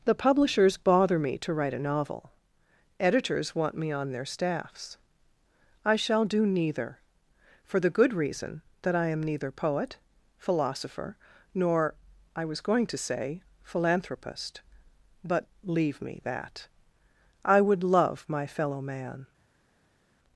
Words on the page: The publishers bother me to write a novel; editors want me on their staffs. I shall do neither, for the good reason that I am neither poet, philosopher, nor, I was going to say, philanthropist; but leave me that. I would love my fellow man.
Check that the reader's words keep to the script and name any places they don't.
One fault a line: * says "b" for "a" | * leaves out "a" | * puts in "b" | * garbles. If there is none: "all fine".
all fine